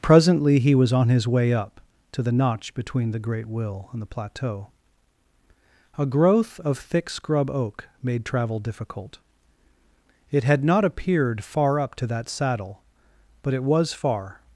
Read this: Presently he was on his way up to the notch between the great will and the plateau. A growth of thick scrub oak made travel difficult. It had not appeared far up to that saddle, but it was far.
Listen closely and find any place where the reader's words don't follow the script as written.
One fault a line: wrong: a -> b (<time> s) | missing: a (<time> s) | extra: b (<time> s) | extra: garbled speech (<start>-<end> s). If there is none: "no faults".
no faults